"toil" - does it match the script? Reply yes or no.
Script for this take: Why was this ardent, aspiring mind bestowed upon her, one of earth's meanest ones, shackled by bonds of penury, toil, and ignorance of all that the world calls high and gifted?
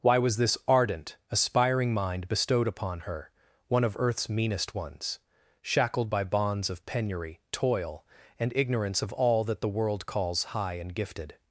yes